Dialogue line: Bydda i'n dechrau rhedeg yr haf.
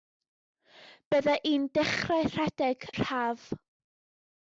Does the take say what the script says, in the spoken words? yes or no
yes